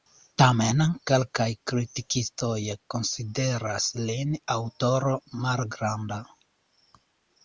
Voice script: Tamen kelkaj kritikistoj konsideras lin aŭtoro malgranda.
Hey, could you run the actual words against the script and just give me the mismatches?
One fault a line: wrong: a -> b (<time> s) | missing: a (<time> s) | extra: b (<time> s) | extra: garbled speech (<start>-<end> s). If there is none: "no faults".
no faults